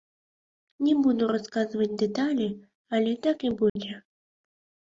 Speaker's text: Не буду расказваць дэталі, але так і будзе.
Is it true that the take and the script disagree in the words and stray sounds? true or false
true